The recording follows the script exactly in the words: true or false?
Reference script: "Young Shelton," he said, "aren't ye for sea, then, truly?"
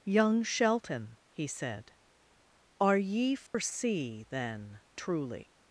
false